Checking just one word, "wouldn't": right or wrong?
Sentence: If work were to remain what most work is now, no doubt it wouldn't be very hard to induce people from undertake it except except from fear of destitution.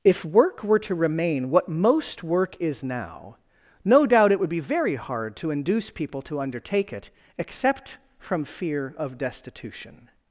wrong